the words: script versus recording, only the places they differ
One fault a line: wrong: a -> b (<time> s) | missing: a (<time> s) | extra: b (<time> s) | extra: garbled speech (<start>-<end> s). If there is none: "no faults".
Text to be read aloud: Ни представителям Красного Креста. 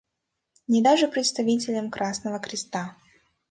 extra: даже (0.8 s)